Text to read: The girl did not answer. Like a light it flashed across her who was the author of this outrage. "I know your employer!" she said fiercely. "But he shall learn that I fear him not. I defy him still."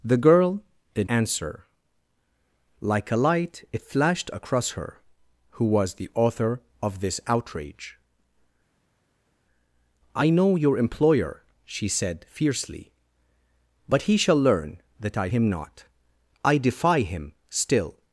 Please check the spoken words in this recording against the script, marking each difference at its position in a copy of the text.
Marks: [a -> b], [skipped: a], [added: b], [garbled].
The girl did [skipped: not] answer. Like a light it flashed across her who was the author of this outrage. "I know your employer!" she said fiercely. "But he shall learn that I [skipped: fear] him not. I defy him still."